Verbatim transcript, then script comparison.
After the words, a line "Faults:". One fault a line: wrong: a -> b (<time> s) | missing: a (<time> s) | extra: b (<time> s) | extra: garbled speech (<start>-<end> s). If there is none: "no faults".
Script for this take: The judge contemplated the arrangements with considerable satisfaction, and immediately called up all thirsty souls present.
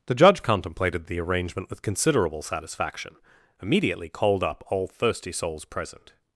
The judge contemplated the arrangement with considerable satisfaction, immediately called up all thirsty souls present.
Faults:
wrong: arrangements -> arrangement (1.2 s)
missing: and (3.1 s)